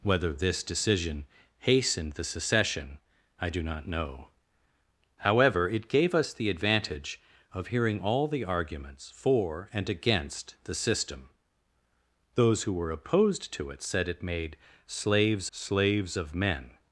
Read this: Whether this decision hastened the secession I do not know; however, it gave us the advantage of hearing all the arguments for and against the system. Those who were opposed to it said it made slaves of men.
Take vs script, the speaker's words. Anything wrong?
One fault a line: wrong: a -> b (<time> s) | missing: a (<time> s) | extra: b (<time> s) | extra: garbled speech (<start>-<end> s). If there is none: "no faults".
extra: slaves (15.5 s)